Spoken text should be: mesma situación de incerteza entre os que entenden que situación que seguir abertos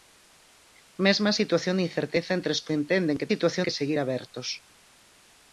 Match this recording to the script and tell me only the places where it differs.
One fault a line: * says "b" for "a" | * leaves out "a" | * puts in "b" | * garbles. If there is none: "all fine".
all fine